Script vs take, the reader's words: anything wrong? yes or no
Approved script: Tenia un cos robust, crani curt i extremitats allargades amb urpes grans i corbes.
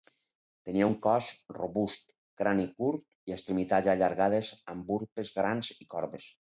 no